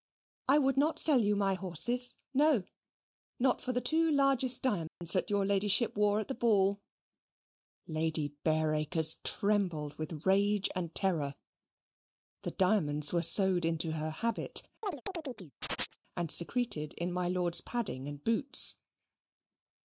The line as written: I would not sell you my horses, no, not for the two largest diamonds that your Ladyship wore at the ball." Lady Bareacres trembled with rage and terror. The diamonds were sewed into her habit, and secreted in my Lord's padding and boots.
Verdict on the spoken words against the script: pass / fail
pass